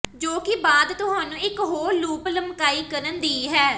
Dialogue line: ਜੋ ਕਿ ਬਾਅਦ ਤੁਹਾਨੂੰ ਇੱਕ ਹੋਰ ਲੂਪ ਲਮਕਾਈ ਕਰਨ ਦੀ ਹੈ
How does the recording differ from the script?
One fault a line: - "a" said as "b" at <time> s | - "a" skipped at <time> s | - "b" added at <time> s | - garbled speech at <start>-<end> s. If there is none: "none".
none